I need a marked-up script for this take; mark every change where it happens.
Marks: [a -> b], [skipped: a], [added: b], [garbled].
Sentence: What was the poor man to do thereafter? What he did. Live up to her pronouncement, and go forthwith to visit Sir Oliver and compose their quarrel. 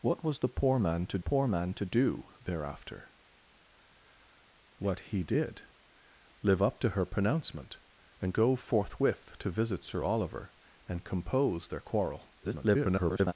What was the poor man to [added: poor man to] do thereafter? What he did. Live up to her pronouncement, and go forthwith to visit Sir Oliver and compose their quarrel. [garbled]